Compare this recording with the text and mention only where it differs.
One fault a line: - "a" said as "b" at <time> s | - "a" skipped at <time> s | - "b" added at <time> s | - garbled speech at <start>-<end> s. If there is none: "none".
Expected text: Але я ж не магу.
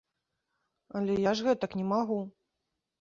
- "гэтак" added at 1.5 s